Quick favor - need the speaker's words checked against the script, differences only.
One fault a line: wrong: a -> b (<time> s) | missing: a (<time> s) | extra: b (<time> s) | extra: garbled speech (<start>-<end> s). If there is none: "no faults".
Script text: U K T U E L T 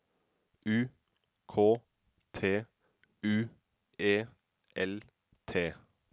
no faults